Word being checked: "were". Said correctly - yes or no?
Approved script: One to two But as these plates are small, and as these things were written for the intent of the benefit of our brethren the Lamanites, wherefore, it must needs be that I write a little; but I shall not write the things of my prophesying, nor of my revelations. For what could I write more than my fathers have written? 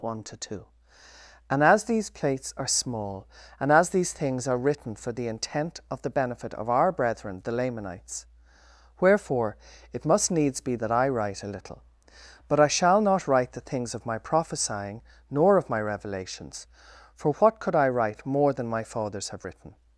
no